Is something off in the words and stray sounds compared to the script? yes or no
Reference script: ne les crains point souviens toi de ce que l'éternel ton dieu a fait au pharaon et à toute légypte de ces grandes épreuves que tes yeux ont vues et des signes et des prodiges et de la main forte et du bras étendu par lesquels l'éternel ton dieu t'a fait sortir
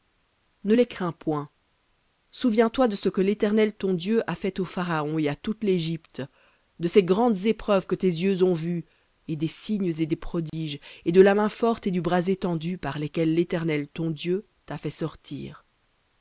yes